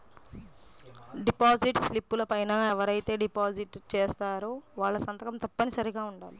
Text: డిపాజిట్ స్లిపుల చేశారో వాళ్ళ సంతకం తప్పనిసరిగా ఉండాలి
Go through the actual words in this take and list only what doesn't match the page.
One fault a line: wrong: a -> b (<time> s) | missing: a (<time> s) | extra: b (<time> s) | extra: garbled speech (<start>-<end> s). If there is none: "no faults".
extra: పైన ఎవరైతే డిపాజిట్ (2.3 s)